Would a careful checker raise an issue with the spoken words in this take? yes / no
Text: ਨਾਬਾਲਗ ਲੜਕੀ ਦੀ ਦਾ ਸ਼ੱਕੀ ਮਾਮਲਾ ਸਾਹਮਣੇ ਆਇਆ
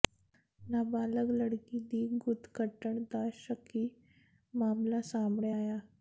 yes